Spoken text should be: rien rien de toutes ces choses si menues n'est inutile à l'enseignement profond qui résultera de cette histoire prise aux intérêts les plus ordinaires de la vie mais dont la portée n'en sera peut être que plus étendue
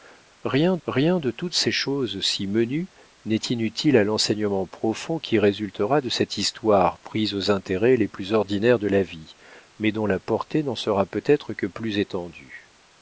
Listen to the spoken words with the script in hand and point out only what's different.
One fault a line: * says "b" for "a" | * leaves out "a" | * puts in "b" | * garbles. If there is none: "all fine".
all fine